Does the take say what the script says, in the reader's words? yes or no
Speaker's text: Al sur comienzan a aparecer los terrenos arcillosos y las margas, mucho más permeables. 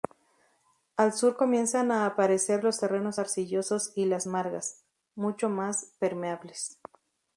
yes